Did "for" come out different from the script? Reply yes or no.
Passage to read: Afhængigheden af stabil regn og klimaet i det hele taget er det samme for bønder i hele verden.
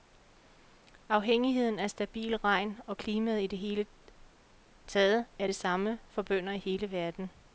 no